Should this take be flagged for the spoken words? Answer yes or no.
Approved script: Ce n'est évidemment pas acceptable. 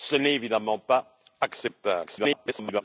yes